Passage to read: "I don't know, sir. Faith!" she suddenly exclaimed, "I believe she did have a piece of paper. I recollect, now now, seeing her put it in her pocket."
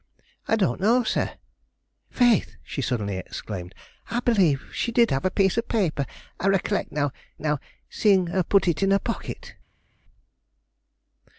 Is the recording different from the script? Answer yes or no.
no